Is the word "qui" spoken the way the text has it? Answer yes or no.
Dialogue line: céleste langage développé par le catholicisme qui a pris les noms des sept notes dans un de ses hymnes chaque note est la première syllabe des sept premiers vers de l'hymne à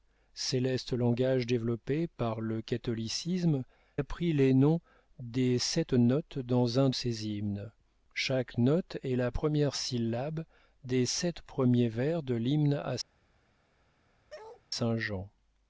no